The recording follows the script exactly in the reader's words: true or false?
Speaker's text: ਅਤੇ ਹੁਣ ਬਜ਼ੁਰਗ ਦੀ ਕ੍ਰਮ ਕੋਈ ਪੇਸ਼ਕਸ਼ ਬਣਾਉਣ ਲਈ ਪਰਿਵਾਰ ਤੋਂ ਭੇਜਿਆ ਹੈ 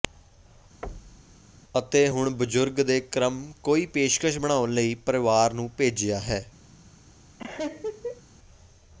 false